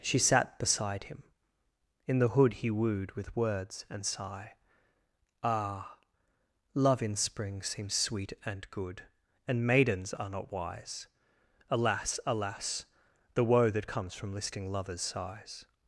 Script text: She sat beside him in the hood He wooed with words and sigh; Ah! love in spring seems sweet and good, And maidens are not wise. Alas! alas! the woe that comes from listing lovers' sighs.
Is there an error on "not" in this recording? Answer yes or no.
no